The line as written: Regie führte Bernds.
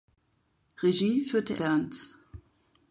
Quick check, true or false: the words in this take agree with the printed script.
true